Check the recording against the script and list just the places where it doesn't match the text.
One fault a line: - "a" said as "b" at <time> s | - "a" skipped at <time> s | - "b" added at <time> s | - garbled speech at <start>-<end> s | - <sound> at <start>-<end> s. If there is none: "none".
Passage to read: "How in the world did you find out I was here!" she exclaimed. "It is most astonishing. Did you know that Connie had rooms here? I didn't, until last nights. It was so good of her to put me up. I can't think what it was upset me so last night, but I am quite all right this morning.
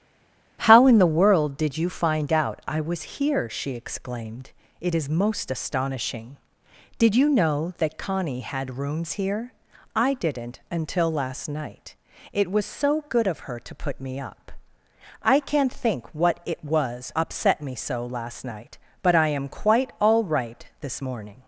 - "nights" said as "night" at 11.5 s